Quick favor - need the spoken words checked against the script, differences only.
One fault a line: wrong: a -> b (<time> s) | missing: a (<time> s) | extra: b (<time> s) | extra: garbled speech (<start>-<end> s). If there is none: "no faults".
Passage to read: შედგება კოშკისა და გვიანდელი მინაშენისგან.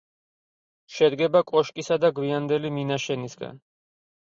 no faults